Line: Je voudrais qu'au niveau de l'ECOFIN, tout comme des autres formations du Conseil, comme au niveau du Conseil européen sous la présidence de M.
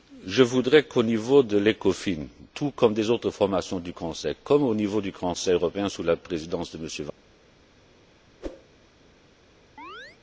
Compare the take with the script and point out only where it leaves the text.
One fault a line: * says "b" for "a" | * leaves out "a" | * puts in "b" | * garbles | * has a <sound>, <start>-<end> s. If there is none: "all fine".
* has a whoosh, 8.4-8.7 s
* has a chirp, 9.8-10.2 s